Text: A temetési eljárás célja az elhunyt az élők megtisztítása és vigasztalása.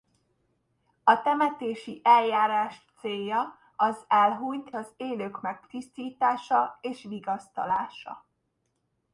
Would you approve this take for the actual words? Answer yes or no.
yes